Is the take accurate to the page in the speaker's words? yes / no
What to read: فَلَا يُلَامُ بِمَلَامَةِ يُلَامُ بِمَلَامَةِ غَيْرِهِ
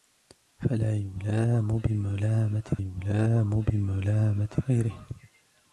yes